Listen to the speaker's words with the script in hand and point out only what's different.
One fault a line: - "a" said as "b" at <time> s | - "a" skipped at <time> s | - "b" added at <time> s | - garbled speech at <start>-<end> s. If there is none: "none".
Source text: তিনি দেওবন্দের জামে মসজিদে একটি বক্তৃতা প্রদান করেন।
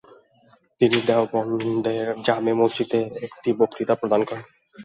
none